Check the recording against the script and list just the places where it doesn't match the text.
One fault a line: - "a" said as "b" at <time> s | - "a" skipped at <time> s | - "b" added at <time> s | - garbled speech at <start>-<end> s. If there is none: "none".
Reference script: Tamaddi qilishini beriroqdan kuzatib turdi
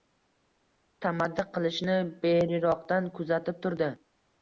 none